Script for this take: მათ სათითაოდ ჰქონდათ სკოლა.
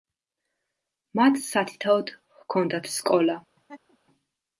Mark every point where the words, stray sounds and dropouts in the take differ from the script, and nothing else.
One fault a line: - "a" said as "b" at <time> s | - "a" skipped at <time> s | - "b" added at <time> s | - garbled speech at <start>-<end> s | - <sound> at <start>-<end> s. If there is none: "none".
- laugh at 3.6-4.0 s